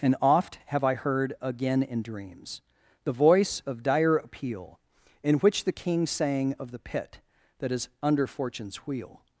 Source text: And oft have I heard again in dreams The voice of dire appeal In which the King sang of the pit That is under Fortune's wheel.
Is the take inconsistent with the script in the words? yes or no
no